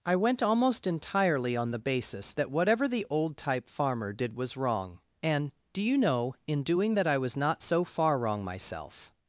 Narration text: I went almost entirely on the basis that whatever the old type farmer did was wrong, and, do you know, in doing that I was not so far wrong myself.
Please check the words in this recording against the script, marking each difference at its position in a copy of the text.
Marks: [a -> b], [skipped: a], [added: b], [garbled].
I went almost entirely on the basis that whatever the old type farmer did was wrong, and, do you know, in doing that I was not so far wrong myself.